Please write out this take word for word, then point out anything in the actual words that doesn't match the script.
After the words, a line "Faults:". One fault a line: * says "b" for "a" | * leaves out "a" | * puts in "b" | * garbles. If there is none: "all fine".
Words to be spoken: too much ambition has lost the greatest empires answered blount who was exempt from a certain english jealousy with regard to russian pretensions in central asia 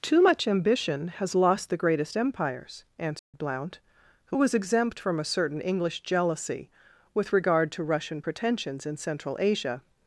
too much ambition has lost the greatest empires answered blount who was exempt from a certain english jealousy with regard to russian pretensions in central asia
Faults:
all fine